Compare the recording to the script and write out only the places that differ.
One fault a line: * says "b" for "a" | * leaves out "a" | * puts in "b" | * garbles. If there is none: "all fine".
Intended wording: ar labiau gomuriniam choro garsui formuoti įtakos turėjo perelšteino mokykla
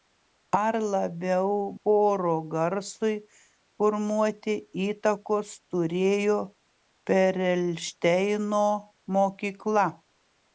* leaves out "gomuriniam"